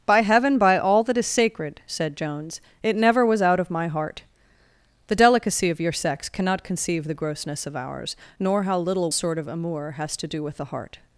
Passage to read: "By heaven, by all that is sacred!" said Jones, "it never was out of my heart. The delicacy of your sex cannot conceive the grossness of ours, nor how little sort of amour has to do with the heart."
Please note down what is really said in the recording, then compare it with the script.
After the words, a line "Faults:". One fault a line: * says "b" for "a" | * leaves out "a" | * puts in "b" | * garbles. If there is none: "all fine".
"By heaven, by all that is sacred!" said Jones, "it never was out of my heart. The delicacy of your sex cannot conceive the grossness of ours, nor how little sort of amour has to do with the heart."
Faults:
all fine